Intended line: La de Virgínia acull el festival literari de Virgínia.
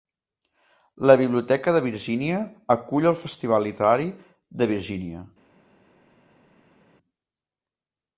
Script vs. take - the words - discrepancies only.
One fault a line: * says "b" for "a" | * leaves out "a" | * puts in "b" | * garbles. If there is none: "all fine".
* puts in "biblioteca"